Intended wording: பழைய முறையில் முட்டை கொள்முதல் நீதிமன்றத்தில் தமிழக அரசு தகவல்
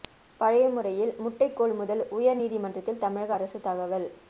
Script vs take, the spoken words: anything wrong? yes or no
yes